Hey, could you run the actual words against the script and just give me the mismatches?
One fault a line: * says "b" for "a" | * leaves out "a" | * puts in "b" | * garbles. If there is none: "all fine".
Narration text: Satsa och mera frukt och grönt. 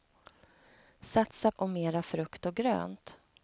all fine